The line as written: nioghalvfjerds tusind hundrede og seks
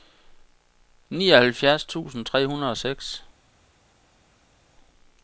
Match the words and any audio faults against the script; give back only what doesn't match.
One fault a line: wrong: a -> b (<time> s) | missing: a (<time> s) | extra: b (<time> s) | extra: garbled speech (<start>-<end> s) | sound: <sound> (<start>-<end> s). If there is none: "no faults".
extra: tre (2.2 s)